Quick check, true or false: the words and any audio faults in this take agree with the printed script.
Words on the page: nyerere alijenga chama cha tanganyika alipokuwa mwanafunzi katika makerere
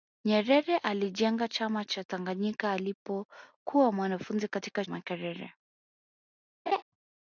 false